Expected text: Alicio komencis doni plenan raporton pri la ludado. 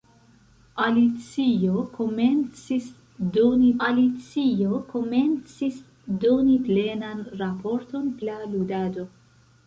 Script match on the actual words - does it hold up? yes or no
no